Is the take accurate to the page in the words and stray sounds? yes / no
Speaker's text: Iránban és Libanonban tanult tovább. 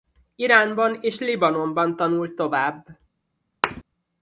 no